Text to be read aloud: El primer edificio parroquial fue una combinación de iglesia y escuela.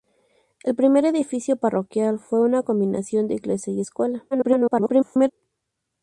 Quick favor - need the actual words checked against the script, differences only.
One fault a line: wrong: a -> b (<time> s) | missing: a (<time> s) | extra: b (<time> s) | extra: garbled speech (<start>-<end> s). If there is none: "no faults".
extra: garbled speech (4.3-5.3 s)